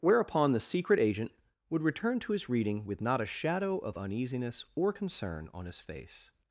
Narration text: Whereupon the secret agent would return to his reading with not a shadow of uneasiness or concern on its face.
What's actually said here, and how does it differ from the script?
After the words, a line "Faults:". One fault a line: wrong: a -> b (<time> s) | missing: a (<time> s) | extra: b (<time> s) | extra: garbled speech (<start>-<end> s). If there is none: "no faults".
Whereupon the secret agent would return to his reading with not a shadow of uneasiness or concern on his face.
Faults:
wrong: its -> his (5.6 s)